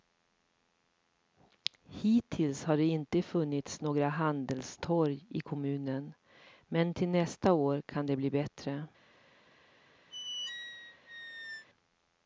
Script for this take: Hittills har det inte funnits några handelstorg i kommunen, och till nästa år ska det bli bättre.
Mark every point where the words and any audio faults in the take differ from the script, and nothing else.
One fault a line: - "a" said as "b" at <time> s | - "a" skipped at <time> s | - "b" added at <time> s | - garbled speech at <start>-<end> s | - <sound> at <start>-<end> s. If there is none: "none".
- "och" said as "men" at 6.6 s
- "ska" said as "kan" at 7.8 s
- squeak at 10.1-11.7 s